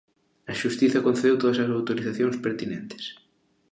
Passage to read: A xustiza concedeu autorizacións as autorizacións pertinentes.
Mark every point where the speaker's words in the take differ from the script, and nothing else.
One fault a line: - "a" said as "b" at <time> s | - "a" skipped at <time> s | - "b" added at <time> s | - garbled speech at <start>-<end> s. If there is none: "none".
- "autorizacións" said as "todas" at 1.4 s